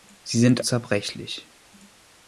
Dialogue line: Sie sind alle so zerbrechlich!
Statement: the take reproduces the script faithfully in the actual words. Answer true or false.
false